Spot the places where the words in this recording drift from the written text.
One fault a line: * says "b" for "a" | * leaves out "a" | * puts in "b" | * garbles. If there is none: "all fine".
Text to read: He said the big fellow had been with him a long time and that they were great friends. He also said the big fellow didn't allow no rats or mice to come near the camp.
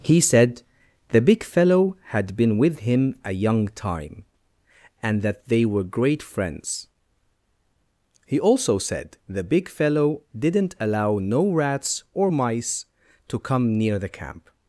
* says "young" for "long"